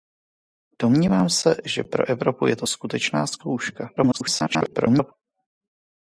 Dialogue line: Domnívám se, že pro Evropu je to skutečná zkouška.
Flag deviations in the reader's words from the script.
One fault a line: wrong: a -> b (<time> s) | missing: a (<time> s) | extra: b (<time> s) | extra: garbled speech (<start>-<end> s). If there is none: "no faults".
extra: garbled speech (4.0-5.1 s)